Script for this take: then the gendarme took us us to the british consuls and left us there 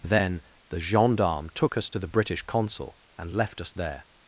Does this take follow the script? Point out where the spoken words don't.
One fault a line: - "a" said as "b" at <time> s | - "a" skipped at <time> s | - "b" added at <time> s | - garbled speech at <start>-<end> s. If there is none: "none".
- "us" skipped at 1.9 s
- "consuls" said as "consul" at 2.4 s